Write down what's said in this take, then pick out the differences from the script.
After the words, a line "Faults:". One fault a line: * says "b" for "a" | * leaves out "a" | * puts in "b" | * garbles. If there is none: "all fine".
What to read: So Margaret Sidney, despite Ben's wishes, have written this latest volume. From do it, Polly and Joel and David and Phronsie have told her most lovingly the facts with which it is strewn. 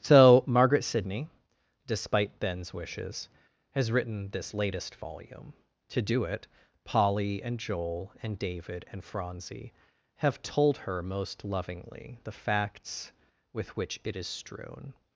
So Margaret Sidney, despite Ben's wishes, has written this latest volume. To do it, Polly and Joel and David and Phronsie have told her most lovingly the facts with which it is strewn.
Faults:
* says "has" for "have"
* says "To" for "From"